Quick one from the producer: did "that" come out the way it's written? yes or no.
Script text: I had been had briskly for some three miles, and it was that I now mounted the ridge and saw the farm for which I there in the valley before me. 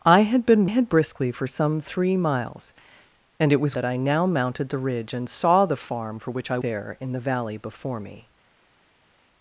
yes